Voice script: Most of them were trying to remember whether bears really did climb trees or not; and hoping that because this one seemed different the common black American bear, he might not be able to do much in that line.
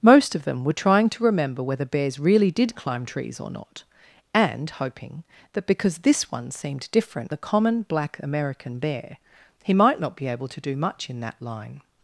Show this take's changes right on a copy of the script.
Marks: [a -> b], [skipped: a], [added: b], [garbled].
Most of them were trying to remember whether bears really did climb trees or not; and hoping that because this one seemed different the common black American bear, he might not be able to do much in that line.